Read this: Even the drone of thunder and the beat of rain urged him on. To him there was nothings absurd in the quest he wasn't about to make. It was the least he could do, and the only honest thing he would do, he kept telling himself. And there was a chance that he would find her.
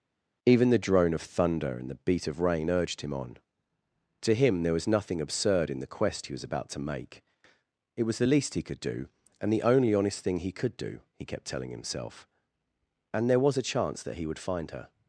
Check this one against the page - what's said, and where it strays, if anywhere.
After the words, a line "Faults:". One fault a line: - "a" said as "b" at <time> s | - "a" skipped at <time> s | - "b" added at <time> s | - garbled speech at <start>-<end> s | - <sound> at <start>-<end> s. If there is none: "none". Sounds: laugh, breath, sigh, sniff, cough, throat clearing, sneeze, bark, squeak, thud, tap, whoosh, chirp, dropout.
Even the drone of thunder and the beat of rain urged him on. To him there was nothing absurd in the quest he was about to make. It was the least he could do, and the only honest thing he could do, he kept telling himself. And there was a chance that he would find her.
Faults:
- "nothings" said as "nothing" at 4.9 s
- "wasn't" said as "was" at 6.3 s
- "would" said as "could" at 10.5 s